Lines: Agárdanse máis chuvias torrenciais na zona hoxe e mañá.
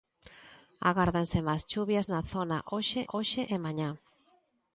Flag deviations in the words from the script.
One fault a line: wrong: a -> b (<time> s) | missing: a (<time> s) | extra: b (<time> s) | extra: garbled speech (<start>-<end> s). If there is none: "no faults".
missing: torrenciais (2.1 s)
extra: hoxe (3.1 s)